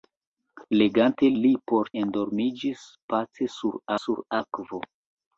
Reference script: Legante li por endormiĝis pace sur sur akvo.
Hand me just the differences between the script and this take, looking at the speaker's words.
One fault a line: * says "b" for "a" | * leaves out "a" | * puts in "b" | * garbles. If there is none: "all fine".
all fine